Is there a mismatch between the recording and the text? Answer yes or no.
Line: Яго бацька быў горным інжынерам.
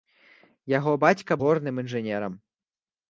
yes